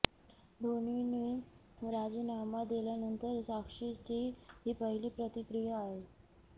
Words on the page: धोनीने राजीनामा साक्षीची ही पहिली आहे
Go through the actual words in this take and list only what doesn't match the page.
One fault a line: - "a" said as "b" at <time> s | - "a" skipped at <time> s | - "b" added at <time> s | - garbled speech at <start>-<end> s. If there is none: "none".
- "दिल्यानंतर" added at 2.6 s
- "प्रतिक्रिया" added at 5.2 s